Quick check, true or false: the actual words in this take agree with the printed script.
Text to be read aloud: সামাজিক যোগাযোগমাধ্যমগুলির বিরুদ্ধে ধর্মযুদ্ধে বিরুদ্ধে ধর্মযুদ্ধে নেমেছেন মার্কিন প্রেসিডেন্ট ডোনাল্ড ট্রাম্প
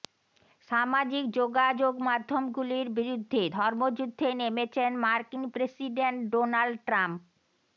false